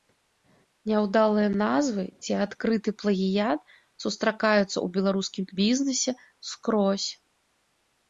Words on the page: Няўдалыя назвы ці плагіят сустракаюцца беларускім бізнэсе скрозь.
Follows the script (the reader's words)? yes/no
no